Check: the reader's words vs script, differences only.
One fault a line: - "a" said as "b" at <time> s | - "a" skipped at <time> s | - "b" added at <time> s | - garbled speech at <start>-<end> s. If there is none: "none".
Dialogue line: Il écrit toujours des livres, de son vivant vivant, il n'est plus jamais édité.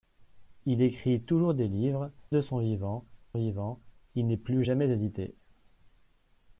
none